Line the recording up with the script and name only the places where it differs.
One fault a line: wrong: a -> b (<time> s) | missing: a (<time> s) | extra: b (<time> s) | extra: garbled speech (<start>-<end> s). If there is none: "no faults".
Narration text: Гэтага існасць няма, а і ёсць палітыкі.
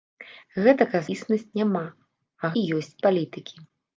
no faults